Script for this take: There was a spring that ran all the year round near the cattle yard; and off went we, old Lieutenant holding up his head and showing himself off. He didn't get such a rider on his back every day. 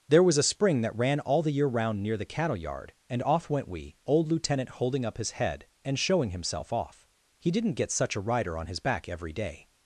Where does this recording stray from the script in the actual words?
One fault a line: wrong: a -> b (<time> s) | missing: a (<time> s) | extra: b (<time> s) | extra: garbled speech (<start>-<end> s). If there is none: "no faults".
no faults